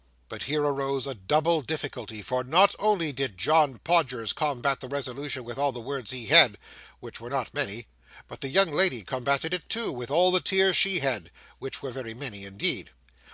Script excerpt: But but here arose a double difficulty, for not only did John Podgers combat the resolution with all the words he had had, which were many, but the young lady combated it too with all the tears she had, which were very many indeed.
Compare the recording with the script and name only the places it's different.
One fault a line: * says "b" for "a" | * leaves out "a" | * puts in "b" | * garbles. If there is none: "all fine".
* leaves out "but"
* leaves out "had"
* puts in "not"